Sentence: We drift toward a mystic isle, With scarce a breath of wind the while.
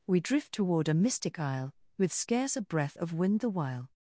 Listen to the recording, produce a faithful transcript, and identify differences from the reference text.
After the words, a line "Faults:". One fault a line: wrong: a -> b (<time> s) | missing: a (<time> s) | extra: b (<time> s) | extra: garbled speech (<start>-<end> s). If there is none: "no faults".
We drift toward a mystic isle, With scarce a breath of wind the while.
Faults:
no faults